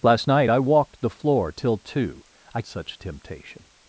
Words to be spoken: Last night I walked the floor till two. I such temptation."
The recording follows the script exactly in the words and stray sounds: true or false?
true